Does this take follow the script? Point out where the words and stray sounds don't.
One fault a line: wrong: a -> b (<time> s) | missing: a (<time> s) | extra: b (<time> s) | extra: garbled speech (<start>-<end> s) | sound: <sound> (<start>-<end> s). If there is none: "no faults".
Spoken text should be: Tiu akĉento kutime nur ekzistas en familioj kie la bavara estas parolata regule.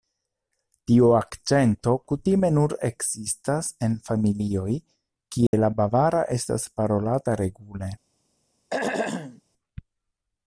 sound: dropout (5.5-5.5 s)
sound: throat clearing (8.7-9.4 s)